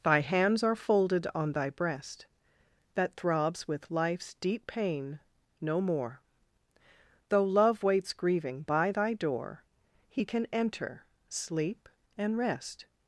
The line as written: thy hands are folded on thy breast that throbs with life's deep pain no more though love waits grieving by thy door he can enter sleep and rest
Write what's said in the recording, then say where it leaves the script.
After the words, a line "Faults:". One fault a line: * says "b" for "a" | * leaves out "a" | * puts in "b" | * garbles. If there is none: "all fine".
thy hands are folded on thy breast that throbs with life's deep pain no more though love waits grieving by thy door he can enter sleep and rest
Faults:
all fine